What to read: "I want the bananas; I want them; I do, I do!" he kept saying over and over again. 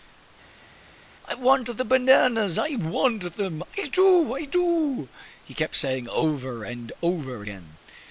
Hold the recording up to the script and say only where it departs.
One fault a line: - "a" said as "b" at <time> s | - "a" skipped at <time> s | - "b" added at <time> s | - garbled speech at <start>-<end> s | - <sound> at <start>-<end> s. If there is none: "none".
none